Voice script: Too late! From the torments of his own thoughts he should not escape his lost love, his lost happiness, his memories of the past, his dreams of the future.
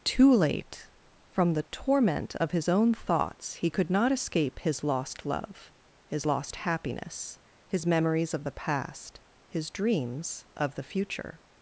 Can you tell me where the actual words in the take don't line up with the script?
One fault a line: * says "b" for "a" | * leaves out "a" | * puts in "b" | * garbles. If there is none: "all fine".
* says "torment" for "torments"
* says "could" for "should"